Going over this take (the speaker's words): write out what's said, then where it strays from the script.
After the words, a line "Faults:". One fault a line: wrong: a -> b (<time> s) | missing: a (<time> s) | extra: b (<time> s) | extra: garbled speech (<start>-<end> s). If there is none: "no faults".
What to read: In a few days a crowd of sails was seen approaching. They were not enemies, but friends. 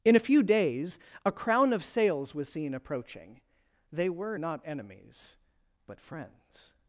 In a few days a crown of sails was seen approaching. They were not enemies, but friends.
Faults:
wrong: crowd -> crown (1.3 s)